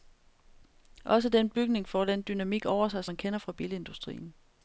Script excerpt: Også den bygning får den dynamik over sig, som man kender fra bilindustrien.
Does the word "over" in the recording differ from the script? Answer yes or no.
no